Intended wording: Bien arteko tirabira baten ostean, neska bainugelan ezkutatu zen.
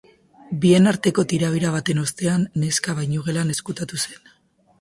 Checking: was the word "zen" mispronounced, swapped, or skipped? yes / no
no